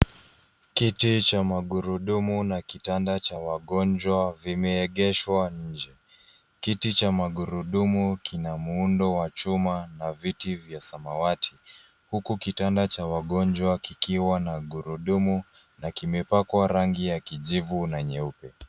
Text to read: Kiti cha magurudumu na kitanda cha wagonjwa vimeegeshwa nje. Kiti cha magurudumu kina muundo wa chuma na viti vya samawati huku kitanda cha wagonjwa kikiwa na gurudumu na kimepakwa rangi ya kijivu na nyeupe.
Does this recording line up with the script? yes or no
yes